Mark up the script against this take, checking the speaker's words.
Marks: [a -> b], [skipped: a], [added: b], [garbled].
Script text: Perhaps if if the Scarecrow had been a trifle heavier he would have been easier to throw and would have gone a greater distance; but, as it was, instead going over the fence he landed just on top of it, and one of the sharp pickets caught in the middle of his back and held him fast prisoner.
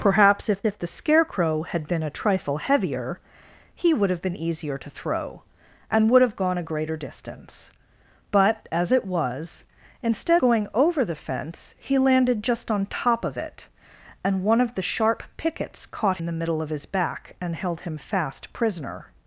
Perhaps if if the Scarecrow had been a trifle heavier he would have been easier to throw and would have gone a greater distance; but, as it was, instead going over the fence he landed just on top of it, and one of the sharp pickets caught in the middle of his back and held him fast prisoner.